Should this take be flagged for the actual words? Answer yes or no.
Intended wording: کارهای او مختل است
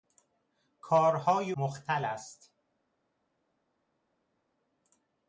yes